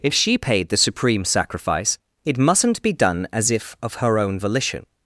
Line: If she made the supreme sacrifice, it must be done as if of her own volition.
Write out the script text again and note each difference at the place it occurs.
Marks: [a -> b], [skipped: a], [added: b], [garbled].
If she [made -> paid] the supreme sacrifice, it [must -> mustn't] be done as if of her own volition.